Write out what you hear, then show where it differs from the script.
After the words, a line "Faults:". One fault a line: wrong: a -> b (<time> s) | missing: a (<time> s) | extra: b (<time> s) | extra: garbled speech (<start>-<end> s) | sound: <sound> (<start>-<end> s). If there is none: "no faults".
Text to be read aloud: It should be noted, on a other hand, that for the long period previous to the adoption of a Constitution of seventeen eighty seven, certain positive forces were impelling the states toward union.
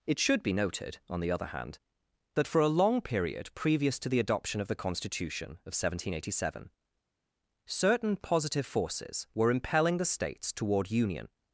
It should be noted, on the other hand, that for a long period previous to the adoption of the Constitution of seventeen eighty seven, certain positive forces were impelling the states toward union.
Faults:
wrong: a -> the (1.2 s)
wrong: the -> a (2.6 s)
wrong: a -> the (4.7 s)